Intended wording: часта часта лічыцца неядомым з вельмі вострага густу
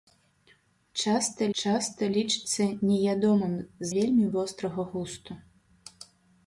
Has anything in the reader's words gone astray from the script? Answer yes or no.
no